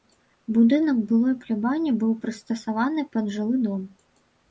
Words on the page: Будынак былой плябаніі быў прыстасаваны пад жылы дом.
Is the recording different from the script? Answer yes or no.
no